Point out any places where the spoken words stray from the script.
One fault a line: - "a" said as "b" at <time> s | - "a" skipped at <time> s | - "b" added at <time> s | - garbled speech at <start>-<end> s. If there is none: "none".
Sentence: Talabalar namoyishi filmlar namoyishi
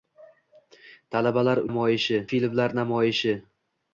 none